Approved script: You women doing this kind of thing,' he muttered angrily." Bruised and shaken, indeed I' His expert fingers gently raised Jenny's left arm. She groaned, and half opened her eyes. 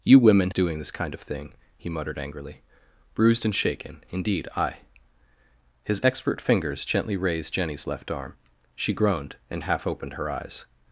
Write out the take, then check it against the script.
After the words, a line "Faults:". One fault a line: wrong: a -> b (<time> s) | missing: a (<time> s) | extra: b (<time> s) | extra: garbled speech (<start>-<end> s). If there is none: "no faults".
You women doing this kind of thing,' he muttered angrily." Bruised and shaken, indeed I' His expert fingers gently raised Jenny's left arm. She groaned, and half opened her eyes.
Faults:
no faults